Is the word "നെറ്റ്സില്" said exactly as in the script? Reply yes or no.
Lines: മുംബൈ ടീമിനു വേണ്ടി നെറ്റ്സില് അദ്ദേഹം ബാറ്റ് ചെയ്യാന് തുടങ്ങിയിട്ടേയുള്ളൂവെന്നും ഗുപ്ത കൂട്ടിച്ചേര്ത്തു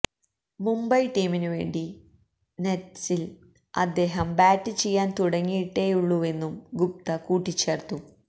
yes